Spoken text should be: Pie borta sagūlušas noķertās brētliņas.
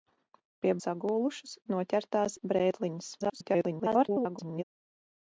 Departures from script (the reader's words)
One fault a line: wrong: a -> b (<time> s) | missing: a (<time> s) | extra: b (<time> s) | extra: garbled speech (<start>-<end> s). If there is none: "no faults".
missing: borta (0.7 s)
extra: garbled speech (3.2-4.6 s)